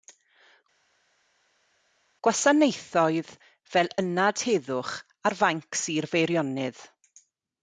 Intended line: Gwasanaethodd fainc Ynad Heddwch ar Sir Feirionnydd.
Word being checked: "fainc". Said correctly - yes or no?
no